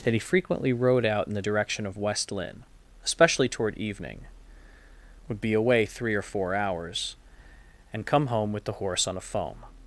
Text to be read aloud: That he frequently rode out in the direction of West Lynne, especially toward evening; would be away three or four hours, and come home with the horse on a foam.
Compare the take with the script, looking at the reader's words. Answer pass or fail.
pass